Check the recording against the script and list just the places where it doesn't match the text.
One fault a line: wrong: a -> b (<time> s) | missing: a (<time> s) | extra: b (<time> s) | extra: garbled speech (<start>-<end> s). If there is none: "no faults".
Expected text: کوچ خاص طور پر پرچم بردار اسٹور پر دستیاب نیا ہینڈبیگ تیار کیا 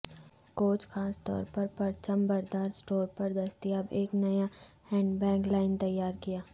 extra: ایک (3.9 s)
extra: لائن (5.5 s)